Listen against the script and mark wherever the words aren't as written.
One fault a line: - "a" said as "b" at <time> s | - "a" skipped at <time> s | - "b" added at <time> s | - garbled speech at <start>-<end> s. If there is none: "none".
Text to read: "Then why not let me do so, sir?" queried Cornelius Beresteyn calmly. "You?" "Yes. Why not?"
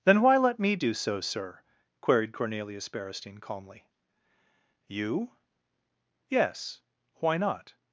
- "not" skipped at 0.4 s